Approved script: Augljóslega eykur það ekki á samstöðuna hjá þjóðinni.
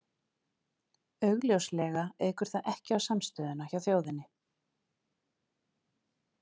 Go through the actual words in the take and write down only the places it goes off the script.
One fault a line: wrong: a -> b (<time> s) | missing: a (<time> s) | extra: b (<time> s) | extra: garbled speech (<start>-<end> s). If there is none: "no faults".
no faults